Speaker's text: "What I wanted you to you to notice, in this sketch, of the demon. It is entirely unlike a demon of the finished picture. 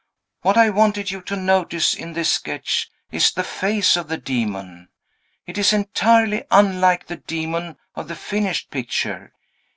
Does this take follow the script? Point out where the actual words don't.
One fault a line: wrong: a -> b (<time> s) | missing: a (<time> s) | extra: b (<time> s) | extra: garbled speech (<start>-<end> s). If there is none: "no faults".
missing: you to (1.3 s)
extra: is the face (3.1 s)
wrong: a -> the (7.1 s)